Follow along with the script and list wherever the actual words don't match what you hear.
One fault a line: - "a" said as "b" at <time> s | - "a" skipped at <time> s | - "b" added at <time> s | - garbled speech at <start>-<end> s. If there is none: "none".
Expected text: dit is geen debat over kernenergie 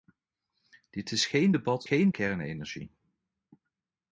- "over" said as "geen" at 1.8 s